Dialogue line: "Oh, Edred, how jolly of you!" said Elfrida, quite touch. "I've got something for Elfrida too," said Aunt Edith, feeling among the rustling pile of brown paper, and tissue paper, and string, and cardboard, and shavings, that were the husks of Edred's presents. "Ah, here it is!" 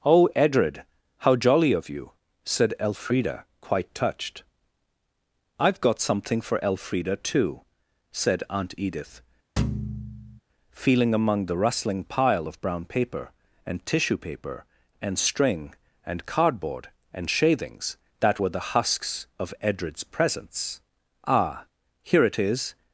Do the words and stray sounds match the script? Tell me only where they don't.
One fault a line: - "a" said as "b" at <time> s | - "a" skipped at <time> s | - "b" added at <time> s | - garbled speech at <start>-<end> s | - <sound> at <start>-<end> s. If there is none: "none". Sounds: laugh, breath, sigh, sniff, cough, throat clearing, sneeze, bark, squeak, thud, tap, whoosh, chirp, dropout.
- "touch" said as "touched" at 3.9 s
- thud at 9.6-10.4 s